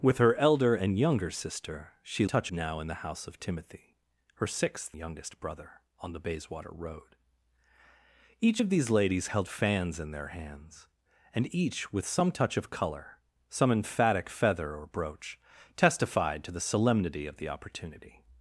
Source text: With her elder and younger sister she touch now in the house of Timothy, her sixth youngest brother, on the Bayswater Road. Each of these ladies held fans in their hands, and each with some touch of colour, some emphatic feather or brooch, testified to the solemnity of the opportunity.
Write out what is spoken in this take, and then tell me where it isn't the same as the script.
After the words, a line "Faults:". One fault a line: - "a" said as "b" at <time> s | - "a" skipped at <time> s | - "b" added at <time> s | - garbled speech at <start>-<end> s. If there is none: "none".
With her elder and younger sister she touch now in the house of Timothy, her sixth youngest brother, on the Bayswater Road. Each of these ladies held fans in their hands, and each with some touch of colour, some emphatic feather or brooch, testified to the solemnity of the opportunity.
Faults:
none